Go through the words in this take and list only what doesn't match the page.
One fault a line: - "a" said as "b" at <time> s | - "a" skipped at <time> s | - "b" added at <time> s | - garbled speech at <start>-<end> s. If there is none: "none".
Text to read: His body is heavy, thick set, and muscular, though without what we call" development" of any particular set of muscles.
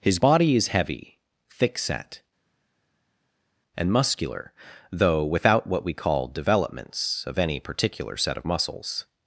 - "development" said as "developments" at 6.3 s